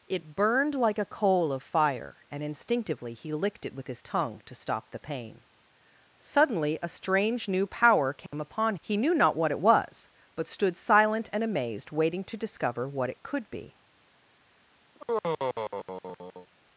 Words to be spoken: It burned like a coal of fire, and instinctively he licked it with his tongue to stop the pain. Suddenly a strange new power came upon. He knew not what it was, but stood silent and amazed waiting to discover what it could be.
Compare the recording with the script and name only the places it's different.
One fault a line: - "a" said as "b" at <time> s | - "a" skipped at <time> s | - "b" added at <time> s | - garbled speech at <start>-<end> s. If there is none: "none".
none